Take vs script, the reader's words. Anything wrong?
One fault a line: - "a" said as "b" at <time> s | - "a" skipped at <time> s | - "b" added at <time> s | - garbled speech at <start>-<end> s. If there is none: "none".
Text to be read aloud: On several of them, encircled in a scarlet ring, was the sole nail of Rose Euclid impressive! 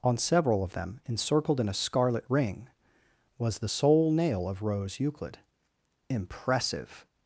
none